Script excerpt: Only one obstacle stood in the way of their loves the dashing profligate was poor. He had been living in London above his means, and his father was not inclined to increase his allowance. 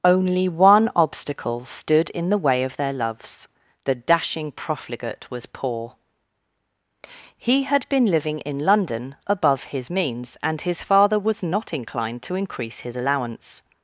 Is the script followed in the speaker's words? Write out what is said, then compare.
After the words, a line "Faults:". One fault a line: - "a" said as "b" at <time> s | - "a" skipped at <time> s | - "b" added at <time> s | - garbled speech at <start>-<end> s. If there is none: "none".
Only one obstacle stood in the way of their loves the dashing profligate was poor. He had been living in London above his means, and his father was not inclined to increase his allowance.
Faults:
none